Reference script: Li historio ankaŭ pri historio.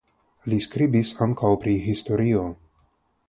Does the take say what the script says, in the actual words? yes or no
no